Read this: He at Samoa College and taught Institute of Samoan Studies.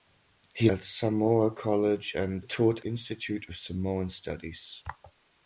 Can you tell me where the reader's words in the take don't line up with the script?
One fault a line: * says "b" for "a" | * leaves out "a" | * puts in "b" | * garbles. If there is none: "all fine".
all fine